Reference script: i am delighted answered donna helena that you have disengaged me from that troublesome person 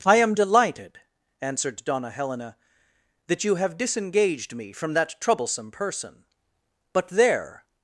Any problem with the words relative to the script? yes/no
yes